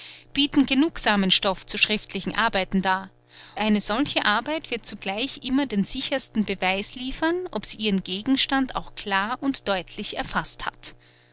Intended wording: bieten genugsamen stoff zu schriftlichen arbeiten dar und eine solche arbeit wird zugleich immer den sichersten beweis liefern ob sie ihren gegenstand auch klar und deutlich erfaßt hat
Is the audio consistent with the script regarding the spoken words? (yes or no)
no